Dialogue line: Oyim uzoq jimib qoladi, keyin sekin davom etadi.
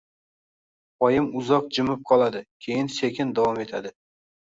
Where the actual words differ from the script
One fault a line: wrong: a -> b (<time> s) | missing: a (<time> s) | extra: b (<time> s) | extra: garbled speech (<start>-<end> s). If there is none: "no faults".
no faults